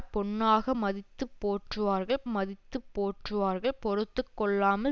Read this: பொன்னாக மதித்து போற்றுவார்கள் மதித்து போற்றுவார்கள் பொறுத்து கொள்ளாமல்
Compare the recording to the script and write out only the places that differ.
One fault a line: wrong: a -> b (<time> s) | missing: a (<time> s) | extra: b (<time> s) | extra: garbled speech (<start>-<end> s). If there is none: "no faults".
no faults